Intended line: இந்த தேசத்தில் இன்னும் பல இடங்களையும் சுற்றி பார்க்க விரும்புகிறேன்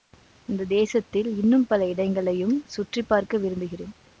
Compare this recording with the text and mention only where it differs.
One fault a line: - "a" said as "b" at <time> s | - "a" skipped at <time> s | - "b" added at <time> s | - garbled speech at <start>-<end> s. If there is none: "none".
none